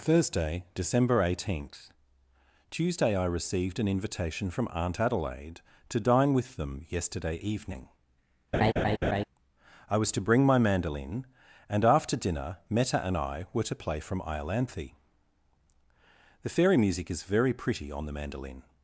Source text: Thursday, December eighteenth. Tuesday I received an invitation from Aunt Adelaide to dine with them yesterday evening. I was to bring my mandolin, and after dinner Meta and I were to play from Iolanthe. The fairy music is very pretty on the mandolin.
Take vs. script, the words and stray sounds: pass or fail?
fail